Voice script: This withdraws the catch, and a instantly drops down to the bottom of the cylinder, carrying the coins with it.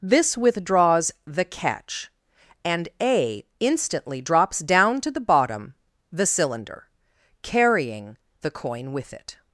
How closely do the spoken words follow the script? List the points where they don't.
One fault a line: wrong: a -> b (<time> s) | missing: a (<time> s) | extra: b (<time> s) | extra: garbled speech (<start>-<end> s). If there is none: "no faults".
missing: of (5.7 s)
wrong: coins -> coin (8.5 s)